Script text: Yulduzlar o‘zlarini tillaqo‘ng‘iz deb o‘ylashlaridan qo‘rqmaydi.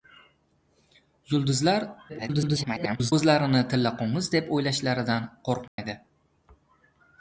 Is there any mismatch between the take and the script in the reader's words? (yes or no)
yes